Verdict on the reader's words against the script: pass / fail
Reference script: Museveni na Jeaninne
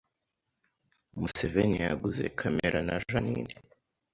fail